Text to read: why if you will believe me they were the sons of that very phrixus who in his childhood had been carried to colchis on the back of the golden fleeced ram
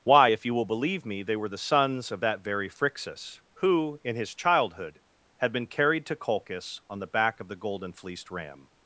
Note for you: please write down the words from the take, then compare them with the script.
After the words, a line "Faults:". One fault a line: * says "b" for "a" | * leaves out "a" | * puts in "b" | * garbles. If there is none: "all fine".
why if you will believe me they were the sons of that very phrixus who in his childhood had been carried to colchis on the back of the golden fleeced ram
Faults:
all fine